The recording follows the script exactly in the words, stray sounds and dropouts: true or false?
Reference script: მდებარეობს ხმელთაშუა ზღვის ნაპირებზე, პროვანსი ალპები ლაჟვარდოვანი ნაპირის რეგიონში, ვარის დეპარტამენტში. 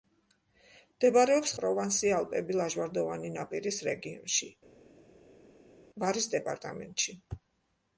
false